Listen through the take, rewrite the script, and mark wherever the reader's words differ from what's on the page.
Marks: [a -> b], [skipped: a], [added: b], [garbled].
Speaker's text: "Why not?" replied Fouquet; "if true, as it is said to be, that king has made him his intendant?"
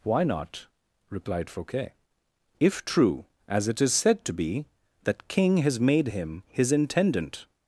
"Why not?" replied Fouquet; "if true, as it is said to be, that king has made him his intendant?"